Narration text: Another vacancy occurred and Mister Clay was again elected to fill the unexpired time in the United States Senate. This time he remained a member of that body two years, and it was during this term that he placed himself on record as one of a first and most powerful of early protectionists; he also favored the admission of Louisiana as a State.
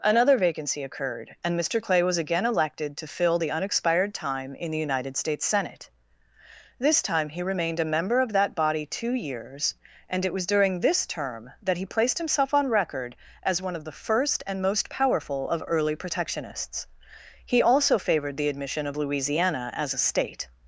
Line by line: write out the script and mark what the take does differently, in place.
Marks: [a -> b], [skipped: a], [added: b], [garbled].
Another vacancy occurred and Mister Clay was again elected to fill the unexpired time in the United States Senate. This time he remained a member of that body two years, and it was during this term that he placed himself on record as one of [a -> the] first and most powerful of early protectionists; he also favored the admission of Louisiana as a State.